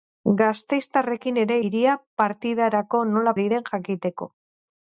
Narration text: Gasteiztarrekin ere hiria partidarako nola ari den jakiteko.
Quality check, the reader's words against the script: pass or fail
pass